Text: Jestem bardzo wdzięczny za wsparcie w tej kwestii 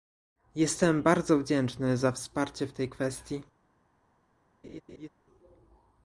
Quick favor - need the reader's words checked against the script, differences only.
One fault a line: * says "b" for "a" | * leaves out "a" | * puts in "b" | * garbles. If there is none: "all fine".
all fine